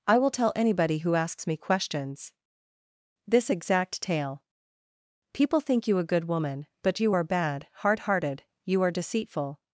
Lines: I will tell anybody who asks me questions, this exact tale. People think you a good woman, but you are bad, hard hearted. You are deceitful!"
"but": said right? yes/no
yes